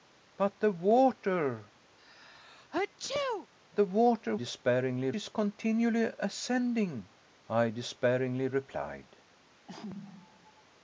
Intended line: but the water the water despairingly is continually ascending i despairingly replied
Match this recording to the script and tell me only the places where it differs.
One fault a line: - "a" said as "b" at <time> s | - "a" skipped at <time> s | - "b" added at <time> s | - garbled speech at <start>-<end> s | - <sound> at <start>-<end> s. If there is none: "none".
- sneeze at 2.0-3.5 s
- sneeze at 9.7-10.6 s